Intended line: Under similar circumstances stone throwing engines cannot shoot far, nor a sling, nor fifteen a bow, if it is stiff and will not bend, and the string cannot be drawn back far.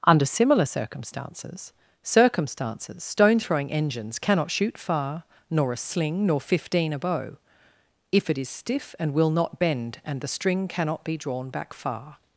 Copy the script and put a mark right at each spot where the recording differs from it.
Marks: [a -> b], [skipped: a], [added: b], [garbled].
Under similar circumstances [added: circumstances] stone throwing engines cannot shoot far, nor a sling, nor fifteen a bow, if it is stiff and will not bend, and the string cannot be drawn back far.